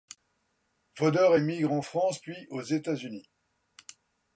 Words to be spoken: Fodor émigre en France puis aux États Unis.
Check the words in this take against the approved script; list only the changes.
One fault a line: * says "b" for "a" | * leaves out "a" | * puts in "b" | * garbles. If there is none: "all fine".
all fine